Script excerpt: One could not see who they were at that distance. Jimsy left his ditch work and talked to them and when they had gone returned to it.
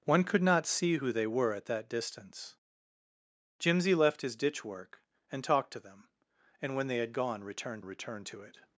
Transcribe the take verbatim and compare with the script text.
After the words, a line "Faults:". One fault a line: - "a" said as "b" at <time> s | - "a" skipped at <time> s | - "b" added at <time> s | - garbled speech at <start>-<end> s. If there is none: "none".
One could not see who they were at that distance. Jimsy left his ditch work and talked to them and when they had gone returned returned to it.
Faults:
- "returned" added at 7.8 s